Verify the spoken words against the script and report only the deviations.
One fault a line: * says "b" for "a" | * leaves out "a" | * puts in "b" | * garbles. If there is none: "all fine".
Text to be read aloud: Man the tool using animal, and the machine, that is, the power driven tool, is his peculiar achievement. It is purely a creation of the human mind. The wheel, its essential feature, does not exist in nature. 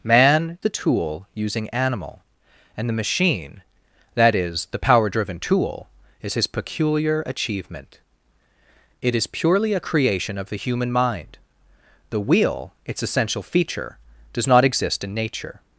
all fine